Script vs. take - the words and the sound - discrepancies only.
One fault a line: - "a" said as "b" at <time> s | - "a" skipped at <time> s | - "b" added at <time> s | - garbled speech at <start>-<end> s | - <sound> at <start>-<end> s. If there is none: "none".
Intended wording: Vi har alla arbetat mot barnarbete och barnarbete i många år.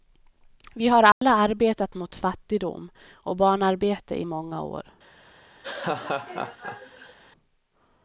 - dropout at 1.1-1.2 s
- "barnarbete" said as "fattigdom" at 2.1 s
- laugh at 5.6-7.2 s